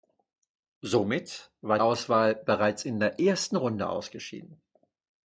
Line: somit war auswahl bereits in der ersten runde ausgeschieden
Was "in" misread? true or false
false